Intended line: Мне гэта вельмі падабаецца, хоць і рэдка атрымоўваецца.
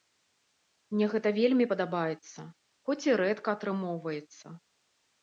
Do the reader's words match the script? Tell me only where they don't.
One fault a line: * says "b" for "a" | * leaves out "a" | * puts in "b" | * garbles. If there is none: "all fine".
all fine